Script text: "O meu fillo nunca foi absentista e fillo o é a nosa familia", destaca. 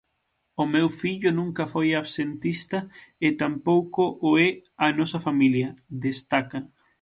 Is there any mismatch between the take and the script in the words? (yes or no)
yes